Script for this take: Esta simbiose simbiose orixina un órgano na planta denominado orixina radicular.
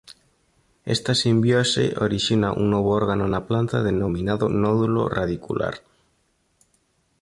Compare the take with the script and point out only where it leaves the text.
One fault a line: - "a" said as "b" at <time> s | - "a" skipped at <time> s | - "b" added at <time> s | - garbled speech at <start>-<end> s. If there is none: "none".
- "simbiose" skipped at 1.9 s
- "novo" added at 2.7 s
- "orixina" said as "nódulo" at 4.5 s